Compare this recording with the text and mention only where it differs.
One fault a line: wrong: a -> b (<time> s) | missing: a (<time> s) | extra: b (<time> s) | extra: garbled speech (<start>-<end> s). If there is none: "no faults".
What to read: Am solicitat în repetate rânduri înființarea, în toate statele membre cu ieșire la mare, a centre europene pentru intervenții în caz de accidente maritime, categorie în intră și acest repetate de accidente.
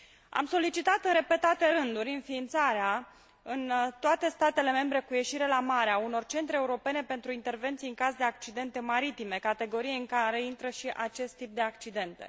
extra: unor (6.0 s)
extra: care (10.1 s)
wrong: repetate -> tip (11.4 s)